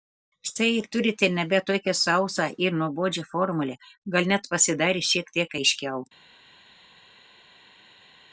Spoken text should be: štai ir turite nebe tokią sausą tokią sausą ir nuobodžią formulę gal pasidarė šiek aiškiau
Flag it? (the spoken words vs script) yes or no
yes